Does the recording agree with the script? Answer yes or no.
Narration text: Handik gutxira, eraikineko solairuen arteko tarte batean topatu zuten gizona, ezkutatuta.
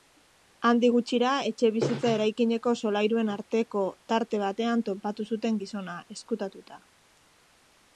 no